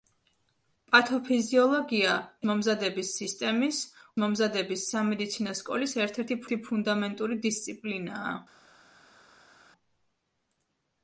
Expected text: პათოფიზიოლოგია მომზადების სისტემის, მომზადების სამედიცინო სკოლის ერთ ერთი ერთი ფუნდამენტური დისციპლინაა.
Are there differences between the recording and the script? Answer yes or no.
no